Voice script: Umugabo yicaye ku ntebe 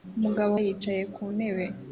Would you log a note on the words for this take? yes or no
no